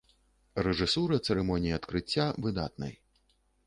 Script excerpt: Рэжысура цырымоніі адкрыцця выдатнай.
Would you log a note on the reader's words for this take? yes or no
no